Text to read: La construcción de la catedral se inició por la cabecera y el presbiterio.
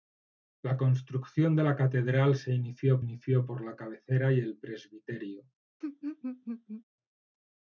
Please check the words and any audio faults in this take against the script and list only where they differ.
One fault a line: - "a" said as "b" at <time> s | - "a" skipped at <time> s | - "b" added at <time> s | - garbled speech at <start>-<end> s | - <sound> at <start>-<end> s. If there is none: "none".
- "inició" added at 3.0 s
- laugh at 5.8-6.8 s